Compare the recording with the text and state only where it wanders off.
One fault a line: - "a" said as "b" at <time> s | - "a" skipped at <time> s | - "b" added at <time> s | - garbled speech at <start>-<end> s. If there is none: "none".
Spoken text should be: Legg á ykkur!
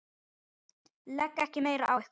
- "ekki meira" added at 1.4 s